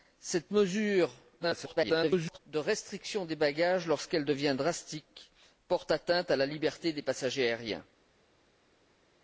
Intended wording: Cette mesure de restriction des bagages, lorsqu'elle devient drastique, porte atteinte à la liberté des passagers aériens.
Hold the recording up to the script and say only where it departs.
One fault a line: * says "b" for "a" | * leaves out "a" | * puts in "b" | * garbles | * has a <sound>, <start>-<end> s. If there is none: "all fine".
* garbles